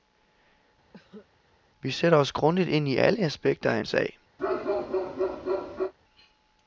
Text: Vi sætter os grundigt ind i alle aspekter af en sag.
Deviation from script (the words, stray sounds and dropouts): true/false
true